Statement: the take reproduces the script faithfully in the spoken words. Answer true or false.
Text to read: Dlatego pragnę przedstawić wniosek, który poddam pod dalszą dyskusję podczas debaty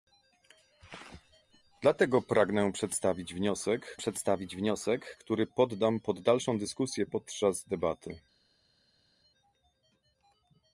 false